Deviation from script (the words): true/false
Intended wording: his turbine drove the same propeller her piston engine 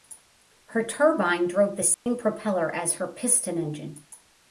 true